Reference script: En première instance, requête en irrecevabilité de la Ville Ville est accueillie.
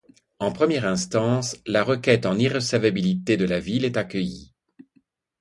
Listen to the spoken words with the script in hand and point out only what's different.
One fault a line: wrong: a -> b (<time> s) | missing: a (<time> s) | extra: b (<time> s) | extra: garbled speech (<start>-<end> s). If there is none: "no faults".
extra: la (1.7 s)
missing: Ville (3.8 s)